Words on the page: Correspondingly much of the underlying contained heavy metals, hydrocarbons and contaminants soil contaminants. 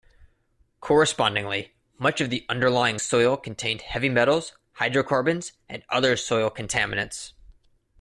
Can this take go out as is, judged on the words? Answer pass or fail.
fail